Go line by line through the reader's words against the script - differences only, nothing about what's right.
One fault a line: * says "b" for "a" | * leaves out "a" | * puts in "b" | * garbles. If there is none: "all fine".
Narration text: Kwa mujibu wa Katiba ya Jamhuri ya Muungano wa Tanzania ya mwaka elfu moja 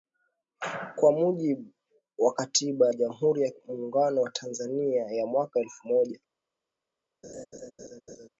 all fine